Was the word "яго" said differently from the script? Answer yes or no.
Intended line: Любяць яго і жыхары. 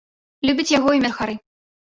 no